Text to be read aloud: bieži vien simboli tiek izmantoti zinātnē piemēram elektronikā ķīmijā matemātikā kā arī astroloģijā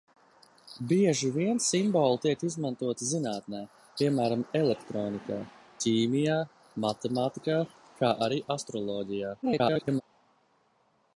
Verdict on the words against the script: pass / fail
fail